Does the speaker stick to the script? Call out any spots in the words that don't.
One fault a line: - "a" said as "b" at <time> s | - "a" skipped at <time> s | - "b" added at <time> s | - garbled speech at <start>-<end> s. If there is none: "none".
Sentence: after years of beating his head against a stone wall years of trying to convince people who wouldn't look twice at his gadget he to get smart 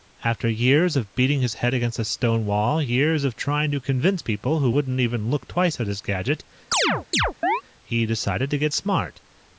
- "even" added at 5.0 s
- "decided" added at 8.1 s